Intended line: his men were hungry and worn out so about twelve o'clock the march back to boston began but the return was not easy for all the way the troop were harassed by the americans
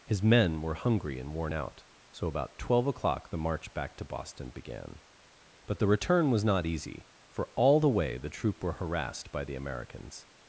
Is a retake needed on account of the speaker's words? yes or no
no